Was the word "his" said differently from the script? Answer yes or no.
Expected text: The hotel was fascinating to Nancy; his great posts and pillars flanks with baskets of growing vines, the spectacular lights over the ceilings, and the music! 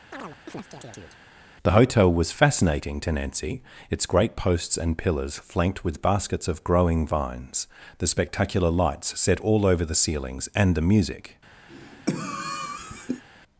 yes